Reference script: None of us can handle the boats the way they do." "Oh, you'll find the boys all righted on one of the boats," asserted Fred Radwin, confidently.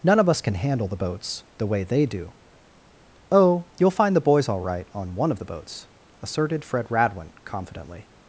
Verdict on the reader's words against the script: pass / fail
fail